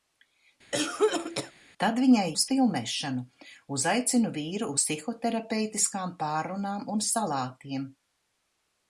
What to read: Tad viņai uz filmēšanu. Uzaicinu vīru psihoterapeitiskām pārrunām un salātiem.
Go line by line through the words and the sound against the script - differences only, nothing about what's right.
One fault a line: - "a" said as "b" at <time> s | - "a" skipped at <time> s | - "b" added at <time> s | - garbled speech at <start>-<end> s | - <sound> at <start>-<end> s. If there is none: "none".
- cough at 0.7-1.5 s